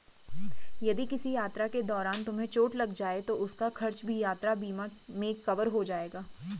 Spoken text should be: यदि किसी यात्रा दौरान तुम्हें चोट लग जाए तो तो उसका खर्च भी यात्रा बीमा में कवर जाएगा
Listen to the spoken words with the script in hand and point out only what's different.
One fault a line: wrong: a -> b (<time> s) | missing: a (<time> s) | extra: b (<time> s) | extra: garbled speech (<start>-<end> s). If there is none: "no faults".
extra: के (1.7 s)
missing: तो (3.4 s)
extra: हो (5.7 s)